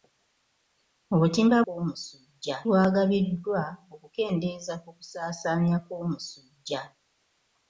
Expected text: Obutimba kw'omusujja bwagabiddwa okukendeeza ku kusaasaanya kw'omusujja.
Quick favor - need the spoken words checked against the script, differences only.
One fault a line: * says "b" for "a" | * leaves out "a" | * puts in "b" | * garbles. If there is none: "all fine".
all fine